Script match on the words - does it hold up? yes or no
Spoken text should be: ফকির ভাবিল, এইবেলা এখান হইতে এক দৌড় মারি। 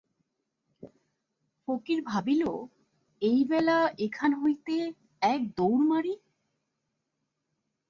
yes